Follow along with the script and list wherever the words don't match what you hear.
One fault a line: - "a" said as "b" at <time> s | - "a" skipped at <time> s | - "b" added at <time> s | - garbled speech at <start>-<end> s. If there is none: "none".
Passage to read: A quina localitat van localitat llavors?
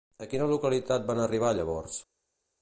- "localitat" said as "arribar" at 1.2 s